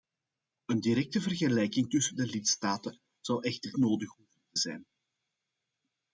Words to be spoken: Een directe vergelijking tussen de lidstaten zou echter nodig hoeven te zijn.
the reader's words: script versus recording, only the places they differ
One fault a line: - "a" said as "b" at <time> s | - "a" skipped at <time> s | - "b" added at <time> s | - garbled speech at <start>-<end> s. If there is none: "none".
none